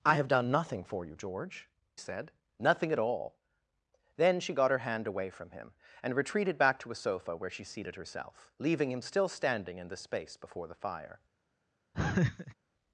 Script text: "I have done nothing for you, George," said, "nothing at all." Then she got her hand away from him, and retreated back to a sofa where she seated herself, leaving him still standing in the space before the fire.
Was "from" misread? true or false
false